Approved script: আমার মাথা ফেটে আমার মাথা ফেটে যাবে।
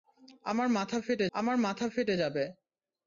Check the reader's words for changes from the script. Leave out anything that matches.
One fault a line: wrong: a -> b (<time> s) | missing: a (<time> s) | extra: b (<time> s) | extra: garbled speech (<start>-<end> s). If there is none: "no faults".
no faults